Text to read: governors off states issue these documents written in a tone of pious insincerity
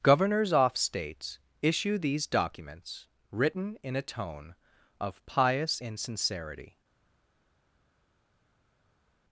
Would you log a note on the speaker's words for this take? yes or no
no